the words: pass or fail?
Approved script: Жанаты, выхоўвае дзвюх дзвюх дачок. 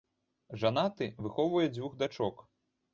fail